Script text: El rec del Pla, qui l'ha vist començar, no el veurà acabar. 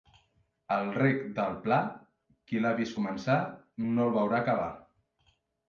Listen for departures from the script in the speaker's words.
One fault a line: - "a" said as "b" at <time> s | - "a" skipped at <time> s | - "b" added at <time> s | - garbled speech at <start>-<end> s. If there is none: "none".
none